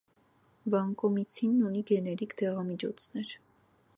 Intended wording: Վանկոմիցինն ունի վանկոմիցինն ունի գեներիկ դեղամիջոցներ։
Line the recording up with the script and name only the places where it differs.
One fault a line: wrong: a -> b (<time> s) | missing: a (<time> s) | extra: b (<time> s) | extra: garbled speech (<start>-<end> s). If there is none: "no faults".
missing: վանկոմիցինն ունի (1.9 s)